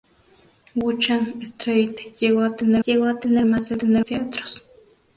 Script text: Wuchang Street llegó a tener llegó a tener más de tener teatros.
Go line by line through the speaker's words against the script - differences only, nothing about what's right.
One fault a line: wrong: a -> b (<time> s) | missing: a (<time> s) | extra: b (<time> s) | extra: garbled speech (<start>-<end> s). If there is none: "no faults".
no faults